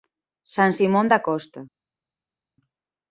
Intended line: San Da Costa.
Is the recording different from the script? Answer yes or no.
yes